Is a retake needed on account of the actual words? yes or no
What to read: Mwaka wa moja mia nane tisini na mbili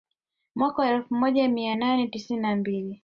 yes